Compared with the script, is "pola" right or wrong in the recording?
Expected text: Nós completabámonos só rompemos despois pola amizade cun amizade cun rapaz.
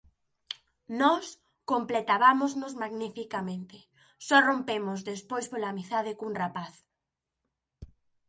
right